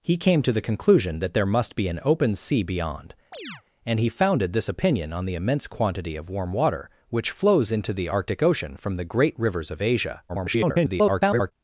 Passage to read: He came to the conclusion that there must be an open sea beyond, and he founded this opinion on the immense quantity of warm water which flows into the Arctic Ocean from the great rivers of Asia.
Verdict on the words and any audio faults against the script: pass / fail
fail